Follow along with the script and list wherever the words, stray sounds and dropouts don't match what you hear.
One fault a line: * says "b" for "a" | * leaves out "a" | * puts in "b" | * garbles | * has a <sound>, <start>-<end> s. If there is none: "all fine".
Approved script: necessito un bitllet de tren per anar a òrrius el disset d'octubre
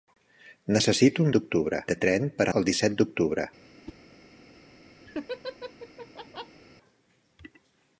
* says "d'octubre" for "bitllet"
* leaves out "anar a òrrius"
* has a whoosh, 3.8-4.0 s
* has a laugh, 5.1-6.6 s